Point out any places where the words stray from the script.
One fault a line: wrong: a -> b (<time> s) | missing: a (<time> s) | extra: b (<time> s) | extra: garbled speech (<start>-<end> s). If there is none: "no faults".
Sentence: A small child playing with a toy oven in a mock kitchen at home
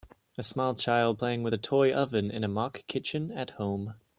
no faults